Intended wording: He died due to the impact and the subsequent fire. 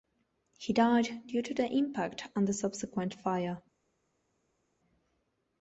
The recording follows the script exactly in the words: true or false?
true